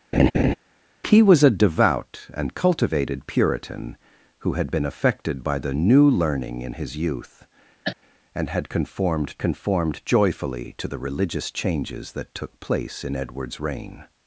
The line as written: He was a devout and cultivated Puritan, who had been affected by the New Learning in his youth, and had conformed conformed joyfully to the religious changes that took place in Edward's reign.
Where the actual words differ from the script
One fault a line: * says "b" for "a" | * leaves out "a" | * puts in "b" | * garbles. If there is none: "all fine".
all fine